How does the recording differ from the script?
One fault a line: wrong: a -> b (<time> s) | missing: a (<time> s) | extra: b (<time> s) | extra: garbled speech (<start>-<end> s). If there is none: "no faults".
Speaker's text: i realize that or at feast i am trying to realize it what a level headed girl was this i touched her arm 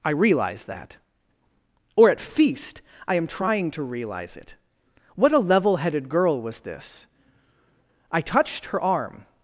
no faults